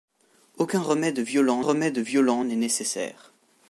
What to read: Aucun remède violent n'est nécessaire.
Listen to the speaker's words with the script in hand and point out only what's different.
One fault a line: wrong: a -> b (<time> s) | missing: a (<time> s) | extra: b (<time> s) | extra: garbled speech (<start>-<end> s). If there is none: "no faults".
extra: remède violent (1.6 s)